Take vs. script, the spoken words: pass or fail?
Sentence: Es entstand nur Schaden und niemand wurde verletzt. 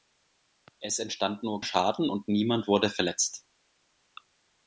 pass